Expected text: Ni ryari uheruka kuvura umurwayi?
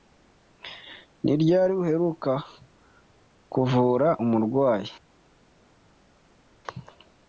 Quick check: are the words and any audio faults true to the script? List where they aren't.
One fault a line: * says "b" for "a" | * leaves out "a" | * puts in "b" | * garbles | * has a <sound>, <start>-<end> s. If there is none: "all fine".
all fine